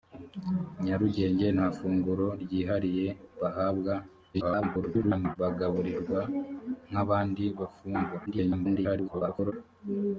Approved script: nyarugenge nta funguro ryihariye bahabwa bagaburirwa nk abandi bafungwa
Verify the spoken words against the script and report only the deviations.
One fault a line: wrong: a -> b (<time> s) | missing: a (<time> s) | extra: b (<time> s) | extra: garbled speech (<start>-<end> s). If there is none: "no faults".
extra: garbled speech (4.3-5.4 s)
extra: garbled speech (8.3-9.5 s)